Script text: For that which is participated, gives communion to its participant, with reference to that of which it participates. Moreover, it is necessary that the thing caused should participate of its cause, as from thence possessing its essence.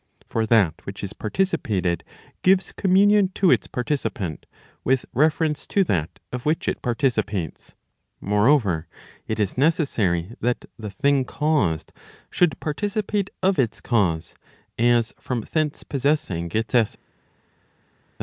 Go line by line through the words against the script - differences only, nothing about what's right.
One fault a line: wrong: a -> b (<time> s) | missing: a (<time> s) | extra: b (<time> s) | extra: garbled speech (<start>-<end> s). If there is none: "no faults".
no faults